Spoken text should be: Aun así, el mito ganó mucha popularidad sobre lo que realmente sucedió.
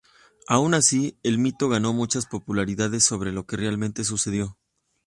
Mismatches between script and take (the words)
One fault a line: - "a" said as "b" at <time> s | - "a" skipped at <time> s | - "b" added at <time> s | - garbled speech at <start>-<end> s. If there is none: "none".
none